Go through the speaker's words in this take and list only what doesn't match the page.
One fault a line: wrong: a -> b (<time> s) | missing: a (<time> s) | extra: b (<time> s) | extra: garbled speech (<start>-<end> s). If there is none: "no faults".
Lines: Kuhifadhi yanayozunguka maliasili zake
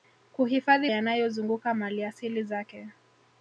no faults